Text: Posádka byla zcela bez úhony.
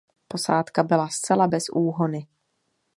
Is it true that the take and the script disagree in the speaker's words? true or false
false